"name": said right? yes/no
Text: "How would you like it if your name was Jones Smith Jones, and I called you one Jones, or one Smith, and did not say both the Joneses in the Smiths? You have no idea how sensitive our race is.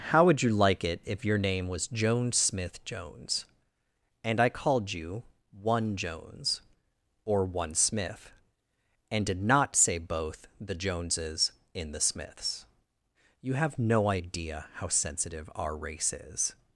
yes